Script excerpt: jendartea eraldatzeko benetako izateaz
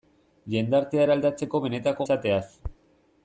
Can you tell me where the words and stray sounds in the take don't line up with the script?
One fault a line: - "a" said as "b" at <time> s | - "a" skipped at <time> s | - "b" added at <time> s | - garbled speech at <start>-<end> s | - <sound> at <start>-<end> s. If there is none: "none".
none